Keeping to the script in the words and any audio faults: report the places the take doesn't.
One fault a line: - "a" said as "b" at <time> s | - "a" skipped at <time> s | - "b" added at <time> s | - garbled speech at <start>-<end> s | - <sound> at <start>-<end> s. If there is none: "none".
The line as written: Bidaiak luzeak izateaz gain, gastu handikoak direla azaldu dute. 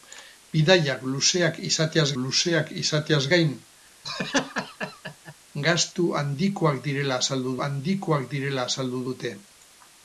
- "luzeak izateaz" added at 2.2 s
- laugh at 4.0-5.3 s
- "handikoak direla azaldu" added at 7.7 s